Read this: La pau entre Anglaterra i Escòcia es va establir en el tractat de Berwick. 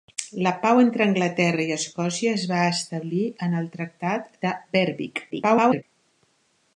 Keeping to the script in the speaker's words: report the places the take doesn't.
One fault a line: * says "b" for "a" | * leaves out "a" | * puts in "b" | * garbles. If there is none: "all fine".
* garbles